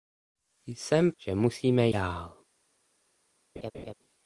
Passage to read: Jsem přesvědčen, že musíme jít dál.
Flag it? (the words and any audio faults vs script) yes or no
yes